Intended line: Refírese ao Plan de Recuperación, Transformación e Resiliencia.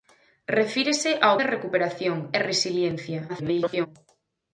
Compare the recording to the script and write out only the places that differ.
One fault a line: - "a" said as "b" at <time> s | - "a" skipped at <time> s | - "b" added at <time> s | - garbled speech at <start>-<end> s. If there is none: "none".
- "Plan" skipped at 1.4 s
- "Transformación" skipped at 2.2 s
- garbled speech at 3.3-3.9 s